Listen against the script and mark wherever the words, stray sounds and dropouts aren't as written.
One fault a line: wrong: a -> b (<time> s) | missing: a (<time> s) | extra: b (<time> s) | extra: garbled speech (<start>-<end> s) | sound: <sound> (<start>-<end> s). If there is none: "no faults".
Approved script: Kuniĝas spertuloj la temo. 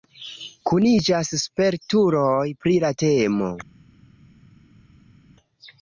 extra: pri (2.6 s)